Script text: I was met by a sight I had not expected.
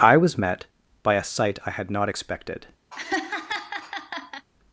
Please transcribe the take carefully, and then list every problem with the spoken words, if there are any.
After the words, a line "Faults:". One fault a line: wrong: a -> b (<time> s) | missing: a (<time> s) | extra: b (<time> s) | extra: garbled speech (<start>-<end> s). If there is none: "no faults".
I was met by a sight I had not expected.
Faults:
no faults